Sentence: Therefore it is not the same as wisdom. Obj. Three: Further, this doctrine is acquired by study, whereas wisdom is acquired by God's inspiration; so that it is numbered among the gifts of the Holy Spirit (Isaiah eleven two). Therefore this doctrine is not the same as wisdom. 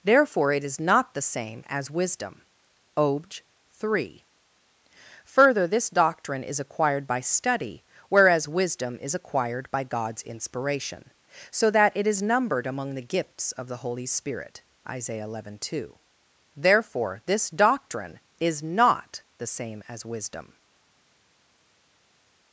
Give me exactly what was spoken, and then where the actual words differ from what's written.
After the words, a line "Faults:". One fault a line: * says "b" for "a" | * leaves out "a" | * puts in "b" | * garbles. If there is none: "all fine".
Therefore it is not the same as wisdom. Obj. Three: Further, this doctrine is acquired by study, whereas wisdom is acquired by God's inspiration; so that it is numbered among the gifts of the Holy Spirit (Isaiah eleven two). Therefore this doctrine is not the same as wisdom.
Faults:
all fine